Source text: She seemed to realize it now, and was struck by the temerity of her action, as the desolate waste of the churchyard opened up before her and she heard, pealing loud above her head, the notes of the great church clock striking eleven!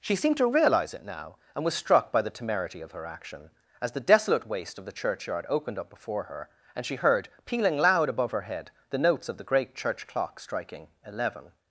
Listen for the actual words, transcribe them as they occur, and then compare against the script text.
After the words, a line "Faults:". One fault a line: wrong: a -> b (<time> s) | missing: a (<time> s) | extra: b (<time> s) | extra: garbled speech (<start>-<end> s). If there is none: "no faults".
She seemed to realize it now, and was struck by the temerity of her action, as the desolate waste of the churchyard opened up before her and she heard, pealing loud above her head, the notes of the great church clock striking eleven!
Faults:
no faults